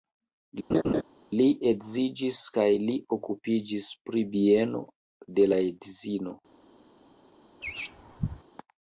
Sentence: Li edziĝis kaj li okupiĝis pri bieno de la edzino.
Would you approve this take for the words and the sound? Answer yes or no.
no